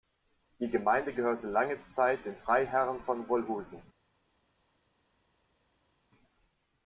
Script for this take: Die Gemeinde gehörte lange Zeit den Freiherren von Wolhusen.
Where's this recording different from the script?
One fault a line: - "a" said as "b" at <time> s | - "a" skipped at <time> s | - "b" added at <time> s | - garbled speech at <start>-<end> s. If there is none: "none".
none